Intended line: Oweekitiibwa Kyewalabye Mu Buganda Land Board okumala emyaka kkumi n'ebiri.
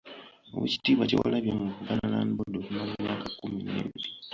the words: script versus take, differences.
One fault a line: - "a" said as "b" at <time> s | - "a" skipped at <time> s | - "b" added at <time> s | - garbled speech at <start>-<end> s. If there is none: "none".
none